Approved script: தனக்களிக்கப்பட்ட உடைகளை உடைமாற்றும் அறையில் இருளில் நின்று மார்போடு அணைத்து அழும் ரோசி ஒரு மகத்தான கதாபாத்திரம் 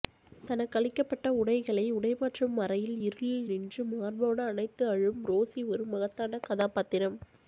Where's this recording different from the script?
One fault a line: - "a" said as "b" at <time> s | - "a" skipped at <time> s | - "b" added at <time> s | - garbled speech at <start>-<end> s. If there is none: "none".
none